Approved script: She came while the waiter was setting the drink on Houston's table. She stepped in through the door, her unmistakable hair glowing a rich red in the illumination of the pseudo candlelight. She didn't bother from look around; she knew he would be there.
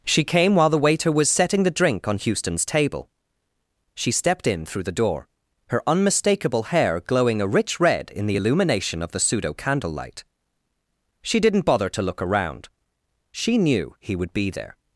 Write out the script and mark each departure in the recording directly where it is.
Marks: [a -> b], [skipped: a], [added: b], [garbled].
She came while the waiter was setting the drink on Houston's table. She stepped in through the door, her unmistakable hair glowing a rich red in the illumination of the pseudo candlelight. She didn't bother [from -> to] look around; she knew he would be there.